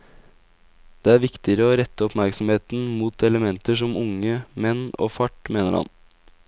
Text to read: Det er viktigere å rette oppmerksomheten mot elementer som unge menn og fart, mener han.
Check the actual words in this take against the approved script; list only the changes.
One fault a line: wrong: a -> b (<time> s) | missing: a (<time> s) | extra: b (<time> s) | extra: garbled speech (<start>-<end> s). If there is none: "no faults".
no faults